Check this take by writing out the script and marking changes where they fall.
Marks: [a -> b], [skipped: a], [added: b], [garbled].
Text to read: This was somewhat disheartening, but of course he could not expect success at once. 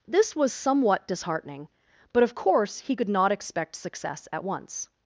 This was somewhat disheartening, but of course he could not expect success at once.